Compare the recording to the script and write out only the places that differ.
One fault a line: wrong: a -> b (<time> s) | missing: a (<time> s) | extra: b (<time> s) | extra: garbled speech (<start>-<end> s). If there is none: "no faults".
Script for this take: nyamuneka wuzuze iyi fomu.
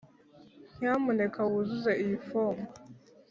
no faults